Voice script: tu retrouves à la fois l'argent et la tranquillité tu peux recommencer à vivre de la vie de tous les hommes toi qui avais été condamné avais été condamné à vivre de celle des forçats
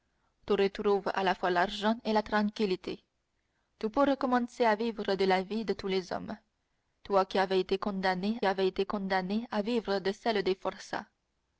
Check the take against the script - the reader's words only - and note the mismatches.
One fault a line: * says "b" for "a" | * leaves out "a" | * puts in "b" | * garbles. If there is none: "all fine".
all fine